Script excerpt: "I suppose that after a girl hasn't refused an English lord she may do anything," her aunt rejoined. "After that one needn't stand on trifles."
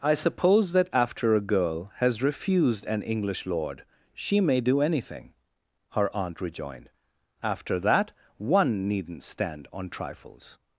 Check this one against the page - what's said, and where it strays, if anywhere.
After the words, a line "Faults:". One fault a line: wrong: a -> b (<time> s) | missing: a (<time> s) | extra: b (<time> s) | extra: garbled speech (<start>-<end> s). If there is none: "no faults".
"I suppose that after a girl has refused an English lord she may do anything," her aunt rejoined. "After that one needn't stand on trifles."
Faults:
wrong: hasn't -> has (2.0 s)